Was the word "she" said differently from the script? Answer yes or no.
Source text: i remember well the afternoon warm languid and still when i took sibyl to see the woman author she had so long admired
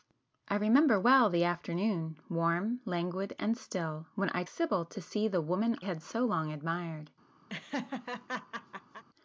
yes